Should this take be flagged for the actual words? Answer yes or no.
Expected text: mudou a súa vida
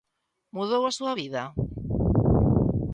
no